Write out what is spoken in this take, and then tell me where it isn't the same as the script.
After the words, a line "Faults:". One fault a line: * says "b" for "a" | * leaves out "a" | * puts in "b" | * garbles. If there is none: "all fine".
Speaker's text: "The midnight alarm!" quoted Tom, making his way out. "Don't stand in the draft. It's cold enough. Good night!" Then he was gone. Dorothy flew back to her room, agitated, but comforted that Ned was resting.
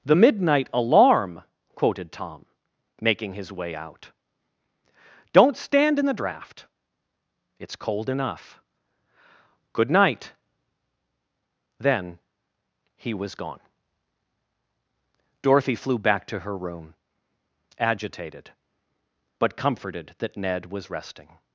"The midnight alarm!" quoted Tom, making his way out. "Don't stand in the draft. It's cold enough. Good night!" Then he was gone. Dorothy flew back to her room, agitated, but comforted that Ned was resting.
Faults:
all fine